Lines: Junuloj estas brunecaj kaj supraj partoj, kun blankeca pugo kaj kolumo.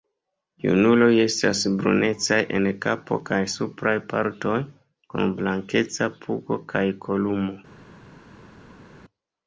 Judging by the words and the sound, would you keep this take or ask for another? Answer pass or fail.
fail